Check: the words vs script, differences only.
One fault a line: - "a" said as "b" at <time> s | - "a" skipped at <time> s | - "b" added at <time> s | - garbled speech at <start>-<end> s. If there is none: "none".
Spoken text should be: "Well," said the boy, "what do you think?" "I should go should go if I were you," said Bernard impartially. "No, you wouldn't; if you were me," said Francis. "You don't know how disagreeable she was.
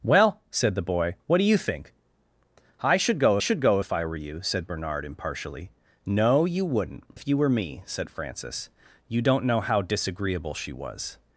none